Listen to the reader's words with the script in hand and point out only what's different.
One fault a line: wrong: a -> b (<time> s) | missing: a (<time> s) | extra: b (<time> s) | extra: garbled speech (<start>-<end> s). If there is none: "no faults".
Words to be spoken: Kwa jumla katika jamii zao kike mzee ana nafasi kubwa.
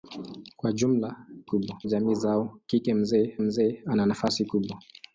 wrong: katika -> kubwa (1.5 s)
extra: mzee (3.4 s)